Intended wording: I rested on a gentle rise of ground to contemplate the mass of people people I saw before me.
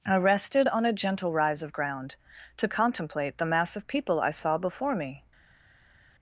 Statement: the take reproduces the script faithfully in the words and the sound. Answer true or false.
false